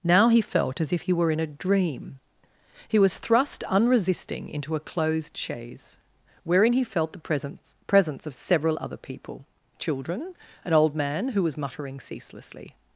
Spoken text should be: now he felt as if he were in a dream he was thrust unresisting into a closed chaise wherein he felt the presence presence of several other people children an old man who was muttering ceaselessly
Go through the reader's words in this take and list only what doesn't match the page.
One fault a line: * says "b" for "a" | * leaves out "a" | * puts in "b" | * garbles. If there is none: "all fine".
all fine